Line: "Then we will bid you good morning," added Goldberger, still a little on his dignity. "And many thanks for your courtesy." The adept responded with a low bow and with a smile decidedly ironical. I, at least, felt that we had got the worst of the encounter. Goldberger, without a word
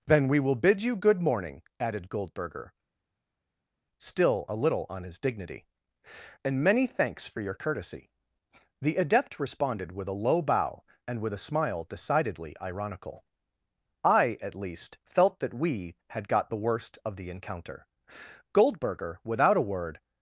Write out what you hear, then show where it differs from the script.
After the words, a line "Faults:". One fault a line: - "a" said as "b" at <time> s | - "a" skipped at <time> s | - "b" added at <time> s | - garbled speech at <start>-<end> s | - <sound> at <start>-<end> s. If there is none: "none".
"Then we will bid you good morning," added Goldberger, still a little on his dignity. "And many thanks for your courtesy." The adept responded with a low bow and with a smile decidedly ironical. I, at least, felt that we had got the worst of the encounter. Goldberger, without a word
Faults:
none